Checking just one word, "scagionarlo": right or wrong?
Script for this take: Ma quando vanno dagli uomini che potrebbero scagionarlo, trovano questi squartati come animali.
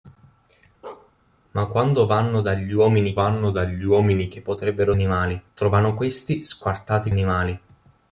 wrong